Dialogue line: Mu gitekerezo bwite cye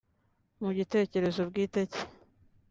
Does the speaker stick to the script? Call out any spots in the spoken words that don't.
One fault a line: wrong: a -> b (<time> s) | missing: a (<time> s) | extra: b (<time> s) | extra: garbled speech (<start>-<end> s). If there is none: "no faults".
no faults